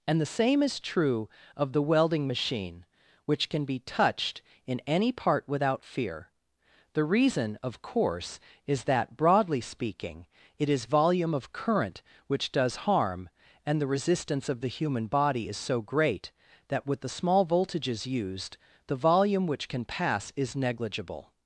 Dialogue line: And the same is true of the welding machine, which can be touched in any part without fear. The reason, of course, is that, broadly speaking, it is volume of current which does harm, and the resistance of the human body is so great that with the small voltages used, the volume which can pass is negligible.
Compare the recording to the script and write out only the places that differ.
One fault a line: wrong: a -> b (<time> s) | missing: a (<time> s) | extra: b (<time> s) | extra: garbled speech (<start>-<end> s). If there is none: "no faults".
no faults